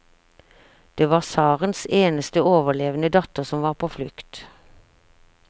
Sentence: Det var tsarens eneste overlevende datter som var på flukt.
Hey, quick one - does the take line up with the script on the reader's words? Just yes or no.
yes